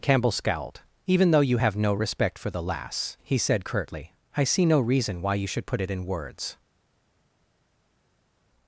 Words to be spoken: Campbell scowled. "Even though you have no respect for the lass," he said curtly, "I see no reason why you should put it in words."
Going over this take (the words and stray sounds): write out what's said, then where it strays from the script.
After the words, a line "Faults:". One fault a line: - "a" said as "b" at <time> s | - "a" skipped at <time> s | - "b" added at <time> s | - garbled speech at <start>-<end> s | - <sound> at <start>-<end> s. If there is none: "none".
Campbell scowled. "Even though you have no respect for the lass," he said curtly, "I see no reason why you should put it in words."
Faults:
none